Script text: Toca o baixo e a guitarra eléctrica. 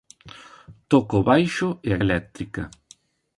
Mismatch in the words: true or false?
true